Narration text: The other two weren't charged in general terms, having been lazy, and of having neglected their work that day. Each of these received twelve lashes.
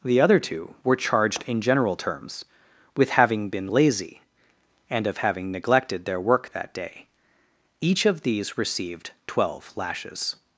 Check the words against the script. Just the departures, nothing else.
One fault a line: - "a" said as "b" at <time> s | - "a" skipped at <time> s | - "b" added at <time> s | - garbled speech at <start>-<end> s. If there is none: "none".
- "weren't" said as "were" at 0.8 s
- "with" added at 3.0 s